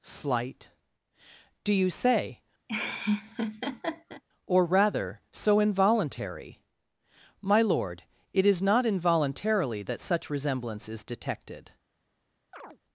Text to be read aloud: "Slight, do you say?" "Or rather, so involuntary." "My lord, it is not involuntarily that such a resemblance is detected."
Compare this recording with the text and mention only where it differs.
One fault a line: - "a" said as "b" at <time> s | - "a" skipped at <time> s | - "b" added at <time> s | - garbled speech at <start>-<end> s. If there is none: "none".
- "a" skipped at 10.3 s